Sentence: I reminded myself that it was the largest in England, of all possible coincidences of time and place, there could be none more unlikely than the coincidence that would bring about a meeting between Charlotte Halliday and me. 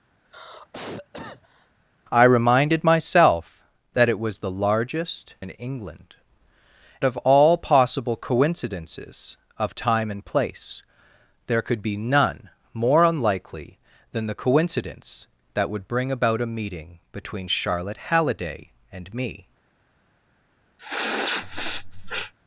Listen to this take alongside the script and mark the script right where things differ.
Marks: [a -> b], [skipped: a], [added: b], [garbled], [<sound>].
[cough] I reminded myself that it was the largest in England, of all possible coincidences of time and place, there could be none more unlikely than the coincidence that would bring about a meeting between Charlotte Halliday and me. [sniff]